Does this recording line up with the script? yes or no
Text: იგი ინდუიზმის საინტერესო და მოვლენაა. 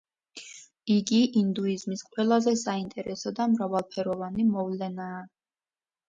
no